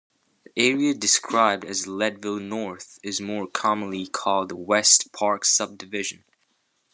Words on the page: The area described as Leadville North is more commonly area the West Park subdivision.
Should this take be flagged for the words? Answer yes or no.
yes